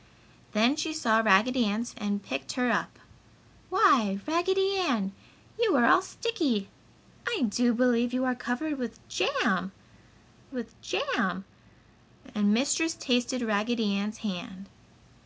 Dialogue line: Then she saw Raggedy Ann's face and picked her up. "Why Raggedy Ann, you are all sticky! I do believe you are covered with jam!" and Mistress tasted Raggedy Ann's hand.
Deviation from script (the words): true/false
true